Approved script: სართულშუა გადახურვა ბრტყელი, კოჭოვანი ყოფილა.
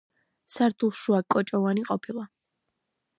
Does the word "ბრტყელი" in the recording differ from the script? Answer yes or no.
yes